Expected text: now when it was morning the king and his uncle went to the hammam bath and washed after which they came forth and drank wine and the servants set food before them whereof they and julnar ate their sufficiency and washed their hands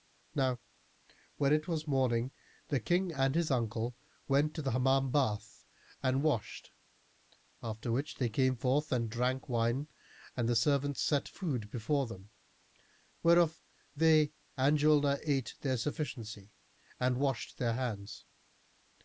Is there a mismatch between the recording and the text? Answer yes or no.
no